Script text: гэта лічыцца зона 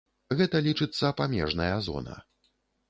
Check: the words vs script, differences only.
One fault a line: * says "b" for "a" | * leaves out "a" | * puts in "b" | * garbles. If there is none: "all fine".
* puts in "памежная"